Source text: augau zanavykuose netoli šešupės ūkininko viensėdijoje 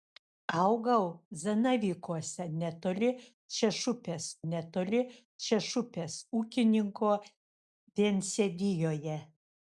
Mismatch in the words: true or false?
true